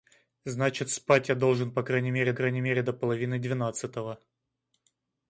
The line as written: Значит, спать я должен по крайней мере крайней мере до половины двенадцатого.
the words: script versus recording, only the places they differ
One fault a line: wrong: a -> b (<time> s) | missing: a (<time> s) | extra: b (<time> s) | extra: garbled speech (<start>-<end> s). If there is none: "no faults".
no faults